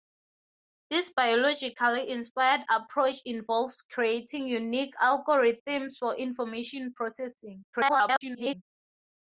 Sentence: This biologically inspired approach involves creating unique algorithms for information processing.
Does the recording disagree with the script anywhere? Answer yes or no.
yes